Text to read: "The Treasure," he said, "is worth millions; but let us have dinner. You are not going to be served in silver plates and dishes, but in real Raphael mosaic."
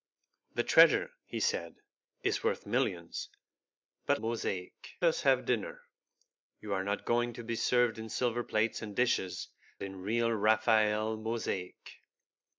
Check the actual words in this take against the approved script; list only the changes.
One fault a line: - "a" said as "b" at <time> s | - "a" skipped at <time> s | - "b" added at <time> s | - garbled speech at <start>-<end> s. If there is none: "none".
- "let" said as "mosaic" at 4.1 s
- "but" skipped at 9.5 s